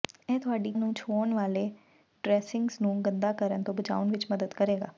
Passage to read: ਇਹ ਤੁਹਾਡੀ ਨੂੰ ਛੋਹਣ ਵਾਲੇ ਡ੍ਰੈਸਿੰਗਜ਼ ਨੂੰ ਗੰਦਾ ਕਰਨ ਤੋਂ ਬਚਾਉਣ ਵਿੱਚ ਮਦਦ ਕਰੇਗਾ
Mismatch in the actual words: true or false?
false